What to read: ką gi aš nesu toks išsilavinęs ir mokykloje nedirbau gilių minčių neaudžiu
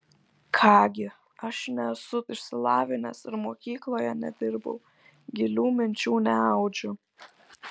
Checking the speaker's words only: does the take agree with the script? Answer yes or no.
no